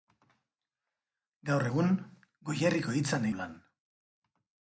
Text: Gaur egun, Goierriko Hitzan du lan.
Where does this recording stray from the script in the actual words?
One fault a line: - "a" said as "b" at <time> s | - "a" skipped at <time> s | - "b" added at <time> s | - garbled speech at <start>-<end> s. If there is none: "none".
none